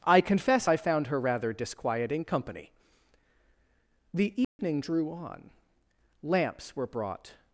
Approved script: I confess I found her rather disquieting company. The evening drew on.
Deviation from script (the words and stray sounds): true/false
true